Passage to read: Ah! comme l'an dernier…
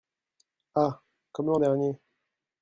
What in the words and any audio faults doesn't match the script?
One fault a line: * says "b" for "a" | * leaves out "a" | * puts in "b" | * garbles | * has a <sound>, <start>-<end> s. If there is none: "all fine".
all fine